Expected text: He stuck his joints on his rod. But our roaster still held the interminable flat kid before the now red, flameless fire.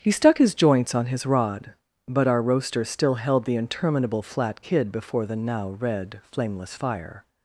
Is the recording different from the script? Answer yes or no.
no